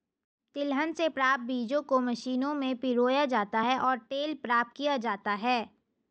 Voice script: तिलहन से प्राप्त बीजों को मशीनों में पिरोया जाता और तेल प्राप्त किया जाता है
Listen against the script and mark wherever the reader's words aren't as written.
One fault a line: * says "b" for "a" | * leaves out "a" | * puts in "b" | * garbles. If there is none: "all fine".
* puts in "है"